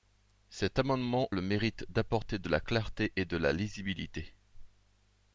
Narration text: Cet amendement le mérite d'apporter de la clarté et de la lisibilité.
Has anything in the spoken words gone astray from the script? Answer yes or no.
no